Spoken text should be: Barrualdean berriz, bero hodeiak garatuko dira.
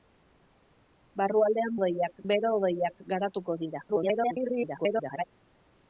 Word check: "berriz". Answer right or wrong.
wrong